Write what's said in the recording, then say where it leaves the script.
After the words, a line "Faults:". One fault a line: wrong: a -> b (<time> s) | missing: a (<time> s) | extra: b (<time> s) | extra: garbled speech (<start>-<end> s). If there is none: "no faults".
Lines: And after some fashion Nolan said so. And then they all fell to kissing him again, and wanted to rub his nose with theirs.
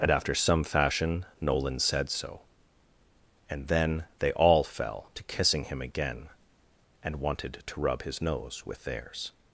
And after some fashion Nolan said so. And then they all fell to kissing him again, and wanted to rub his nose with theirs.
Faults:
no faults